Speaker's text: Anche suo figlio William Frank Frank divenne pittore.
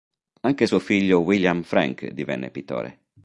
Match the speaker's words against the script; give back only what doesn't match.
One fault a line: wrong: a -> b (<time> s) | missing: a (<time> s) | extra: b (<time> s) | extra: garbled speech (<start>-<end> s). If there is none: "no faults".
missing: Frank (2.1 s)